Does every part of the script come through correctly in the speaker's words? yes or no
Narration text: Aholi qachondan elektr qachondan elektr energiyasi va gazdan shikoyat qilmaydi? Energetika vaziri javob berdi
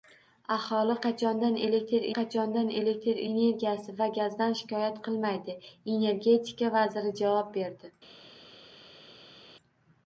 yes